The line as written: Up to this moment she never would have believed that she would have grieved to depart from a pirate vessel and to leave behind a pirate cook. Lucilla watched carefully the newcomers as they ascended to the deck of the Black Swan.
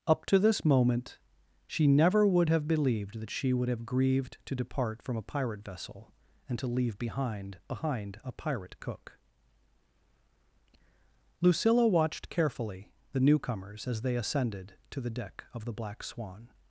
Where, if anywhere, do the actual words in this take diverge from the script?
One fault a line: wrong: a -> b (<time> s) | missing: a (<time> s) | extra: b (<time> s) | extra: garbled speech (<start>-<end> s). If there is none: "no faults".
extra: behind (7.7 s)